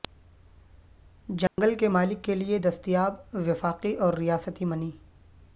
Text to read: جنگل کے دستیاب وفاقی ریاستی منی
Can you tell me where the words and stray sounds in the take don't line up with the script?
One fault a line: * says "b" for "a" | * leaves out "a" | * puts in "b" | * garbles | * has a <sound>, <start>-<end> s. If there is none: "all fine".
* has a dropout, 1.5-1.6 s
* puts in "مالک کے لئے"
* puts in "اور"